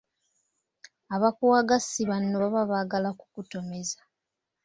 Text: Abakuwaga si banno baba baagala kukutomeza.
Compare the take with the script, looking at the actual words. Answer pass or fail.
pass